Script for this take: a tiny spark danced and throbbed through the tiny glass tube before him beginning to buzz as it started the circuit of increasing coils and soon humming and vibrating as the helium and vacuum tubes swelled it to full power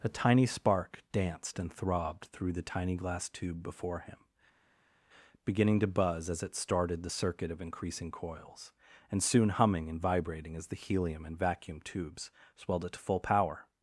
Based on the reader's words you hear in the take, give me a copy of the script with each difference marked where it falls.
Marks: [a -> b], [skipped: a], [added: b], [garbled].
a tiny spark danced and throbbed through the tiny glass tube before him beginning to buzz as it started the circuit of increasing coils and soon humming and vibrating as the helium and vacuum tubes swelled it to full power